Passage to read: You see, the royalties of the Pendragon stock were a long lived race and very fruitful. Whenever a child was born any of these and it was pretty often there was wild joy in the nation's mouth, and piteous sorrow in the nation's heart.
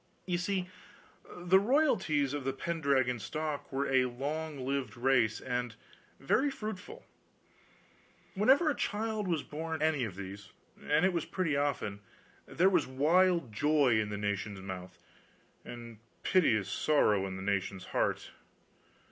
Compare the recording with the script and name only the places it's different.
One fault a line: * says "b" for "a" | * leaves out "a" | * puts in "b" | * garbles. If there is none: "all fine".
all fine